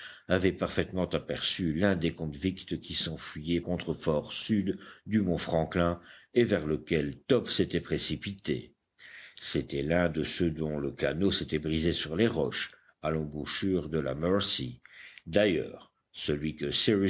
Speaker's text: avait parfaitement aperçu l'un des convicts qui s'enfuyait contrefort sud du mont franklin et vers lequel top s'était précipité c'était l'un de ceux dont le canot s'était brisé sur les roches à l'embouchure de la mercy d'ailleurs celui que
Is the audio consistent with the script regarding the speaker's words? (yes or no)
yes